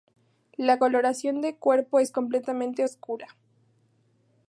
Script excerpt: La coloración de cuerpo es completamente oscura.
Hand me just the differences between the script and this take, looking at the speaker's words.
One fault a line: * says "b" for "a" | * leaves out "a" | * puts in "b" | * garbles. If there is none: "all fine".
all fine